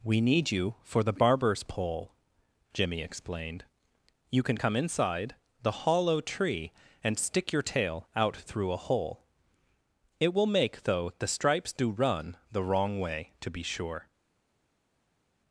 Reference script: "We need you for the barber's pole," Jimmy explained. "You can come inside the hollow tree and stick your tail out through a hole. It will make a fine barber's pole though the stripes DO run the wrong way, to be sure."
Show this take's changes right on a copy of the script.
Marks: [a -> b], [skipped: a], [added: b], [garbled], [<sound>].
"We need you for the barber's pole," Jimmy explained. "You can come inside the hollow tree and stick your tail out through a hole. It will make [skipped: a fine barber's pole] though the stripes DO run the wrong way, to be sure."